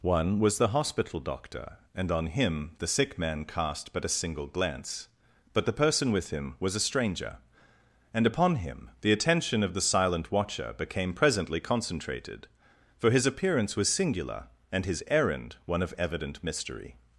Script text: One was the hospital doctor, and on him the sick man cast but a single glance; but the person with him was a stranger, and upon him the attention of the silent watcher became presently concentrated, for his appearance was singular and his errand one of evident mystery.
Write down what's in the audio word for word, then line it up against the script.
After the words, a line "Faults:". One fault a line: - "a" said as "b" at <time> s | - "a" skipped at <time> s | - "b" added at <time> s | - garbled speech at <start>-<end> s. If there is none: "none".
One was the hospital doctor, and on him the sick man cast but a single glance; but the person with him was a stranger, and upon him the attention of the silent watcher became presently concentrated, for his appearance was singular and his errand one of evident mystery.
Faults:
none